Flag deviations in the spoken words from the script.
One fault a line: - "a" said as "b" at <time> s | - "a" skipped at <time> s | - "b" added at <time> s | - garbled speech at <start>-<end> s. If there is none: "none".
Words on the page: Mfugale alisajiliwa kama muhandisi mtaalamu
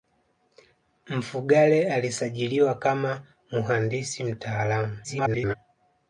- garbled speech at 5.0-5.5 s